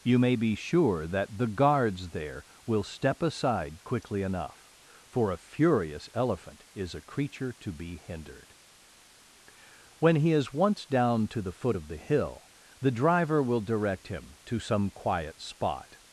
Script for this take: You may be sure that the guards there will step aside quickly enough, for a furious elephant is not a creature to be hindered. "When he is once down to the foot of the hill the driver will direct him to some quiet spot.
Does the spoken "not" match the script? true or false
false